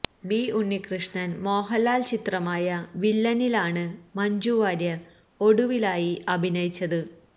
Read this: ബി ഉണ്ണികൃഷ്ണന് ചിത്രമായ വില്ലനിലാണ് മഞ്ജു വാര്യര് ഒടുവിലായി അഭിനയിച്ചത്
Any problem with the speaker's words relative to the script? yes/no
yes